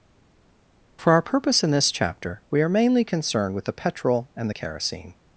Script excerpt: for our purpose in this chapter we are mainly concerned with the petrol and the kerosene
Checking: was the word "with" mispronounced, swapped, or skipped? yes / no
no